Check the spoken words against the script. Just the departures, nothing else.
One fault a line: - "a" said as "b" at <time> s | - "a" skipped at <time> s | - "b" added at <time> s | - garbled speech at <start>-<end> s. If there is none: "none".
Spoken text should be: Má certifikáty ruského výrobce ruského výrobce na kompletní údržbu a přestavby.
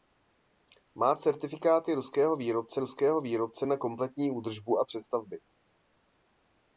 none